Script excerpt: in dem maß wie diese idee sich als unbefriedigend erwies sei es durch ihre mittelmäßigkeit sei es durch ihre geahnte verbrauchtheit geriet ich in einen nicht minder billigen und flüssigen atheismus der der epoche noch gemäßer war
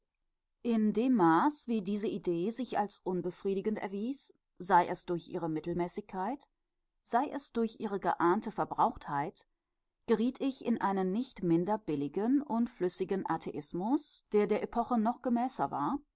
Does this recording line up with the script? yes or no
yes